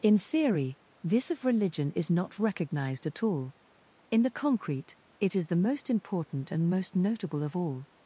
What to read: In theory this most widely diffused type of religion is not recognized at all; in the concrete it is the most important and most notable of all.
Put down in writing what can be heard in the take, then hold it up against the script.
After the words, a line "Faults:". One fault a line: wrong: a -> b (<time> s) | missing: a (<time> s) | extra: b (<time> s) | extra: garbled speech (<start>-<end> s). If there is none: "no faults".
In theory this of religion is not recognized at all; in the concrete it is the most important and most notable of all.
Faults:
missing: most widely diffused type (1.3 s)